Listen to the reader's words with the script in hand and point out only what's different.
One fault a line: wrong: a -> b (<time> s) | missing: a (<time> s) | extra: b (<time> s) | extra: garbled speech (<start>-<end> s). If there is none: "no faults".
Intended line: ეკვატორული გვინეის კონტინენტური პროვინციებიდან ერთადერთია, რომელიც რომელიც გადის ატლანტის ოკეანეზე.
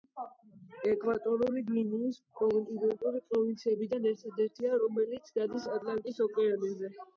missing: რომელიც (5.3 s)